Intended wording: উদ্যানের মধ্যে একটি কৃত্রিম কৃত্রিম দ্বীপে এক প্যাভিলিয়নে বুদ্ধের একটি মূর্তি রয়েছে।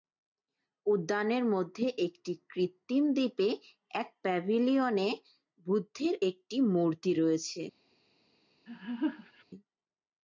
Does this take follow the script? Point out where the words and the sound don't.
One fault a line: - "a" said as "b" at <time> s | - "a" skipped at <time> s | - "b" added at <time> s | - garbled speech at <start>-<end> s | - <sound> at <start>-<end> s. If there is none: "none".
- "কৃত্রিম" skipped at 3.0 s
- laugh at 8.7-9.4 s